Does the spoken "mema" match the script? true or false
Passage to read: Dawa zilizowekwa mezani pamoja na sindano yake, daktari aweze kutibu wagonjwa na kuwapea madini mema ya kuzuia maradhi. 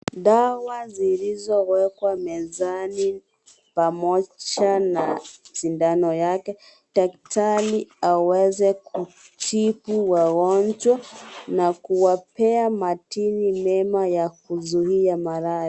true